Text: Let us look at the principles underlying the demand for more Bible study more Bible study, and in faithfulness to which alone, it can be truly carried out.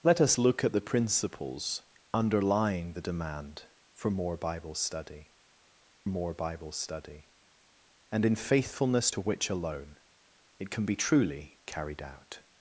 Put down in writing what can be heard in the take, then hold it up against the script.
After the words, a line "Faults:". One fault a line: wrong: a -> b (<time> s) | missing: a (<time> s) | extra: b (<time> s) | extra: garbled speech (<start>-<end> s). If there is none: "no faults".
Let us look at the principles underlying the demand for more Bible study more Bible study, and in faithfulness to which alone, it can be truly carried out.
Faults:
no faults